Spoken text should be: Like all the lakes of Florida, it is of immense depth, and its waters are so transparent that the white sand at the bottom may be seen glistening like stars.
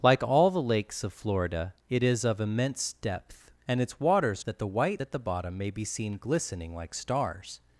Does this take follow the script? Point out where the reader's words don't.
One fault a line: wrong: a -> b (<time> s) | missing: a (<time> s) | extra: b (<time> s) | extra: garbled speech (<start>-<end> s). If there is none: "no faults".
missing: are so transparent (4.4 s)
missing: sand (5.0 s)